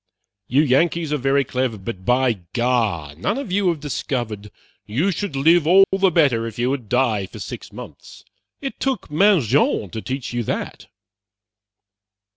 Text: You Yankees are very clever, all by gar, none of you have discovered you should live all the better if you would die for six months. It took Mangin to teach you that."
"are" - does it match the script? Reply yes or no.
yes